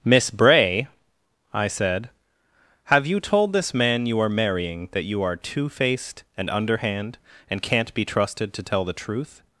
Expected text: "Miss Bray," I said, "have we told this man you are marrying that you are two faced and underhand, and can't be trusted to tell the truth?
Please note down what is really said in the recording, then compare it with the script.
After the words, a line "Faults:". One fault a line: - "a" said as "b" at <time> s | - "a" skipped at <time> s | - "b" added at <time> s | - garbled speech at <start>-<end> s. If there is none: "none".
"Miss Bray," I said, "have you told this man you are marrying that you are two faced and underhand, and can't be trusted to tell the truth?
Faults:
- "we" said as "you" at 3.0 s